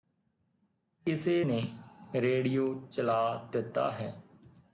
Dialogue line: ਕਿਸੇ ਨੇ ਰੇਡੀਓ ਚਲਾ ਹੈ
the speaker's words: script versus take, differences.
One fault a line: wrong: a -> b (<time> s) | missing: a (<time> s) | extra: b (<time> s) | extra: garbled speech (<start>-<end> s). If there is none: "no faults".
extra: ਦਿੱਤਾ (3.5 s)